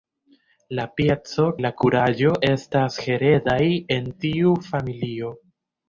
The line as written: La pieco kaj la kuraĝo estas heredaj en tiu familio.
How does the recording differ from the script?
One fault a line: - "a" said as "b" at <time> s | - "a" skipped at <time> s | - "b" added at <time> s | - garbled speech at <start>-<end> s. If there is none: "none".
- "kaj" skipped at 1.4 s